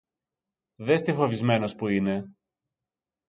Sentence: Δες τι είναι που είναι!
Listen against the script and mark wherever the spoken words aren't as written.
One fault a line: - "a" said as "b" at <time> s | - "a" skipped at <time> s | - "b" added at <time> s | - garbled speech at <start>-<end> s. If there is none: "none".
- "είναι" said as "φοβισμένος" at 1.1 s